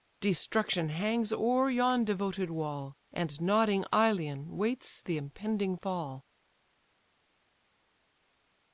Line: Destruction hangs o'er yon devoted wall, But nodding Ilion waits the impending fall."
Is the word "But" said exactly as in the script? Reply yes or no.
no